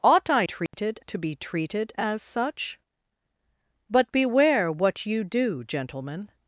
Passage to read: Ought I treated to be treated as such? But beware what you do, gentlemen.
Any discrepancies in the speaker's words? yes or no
no